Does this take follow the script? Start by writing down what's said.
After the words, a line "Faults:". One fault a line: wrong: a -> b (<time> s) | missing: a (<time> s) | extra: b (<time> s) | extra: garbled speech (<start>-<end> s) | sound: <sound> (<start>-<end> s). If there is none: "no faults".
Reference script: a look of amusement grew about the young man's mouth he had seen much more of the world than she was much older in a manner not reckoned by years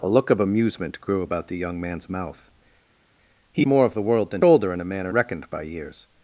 a look of amusement grew about the young man's mouth he more of the world than older in a manner reckoned by years
Faults:
missing: had seen much (3.7 s)
missing: she was much (4.4 s)
missing: not (5.1 s)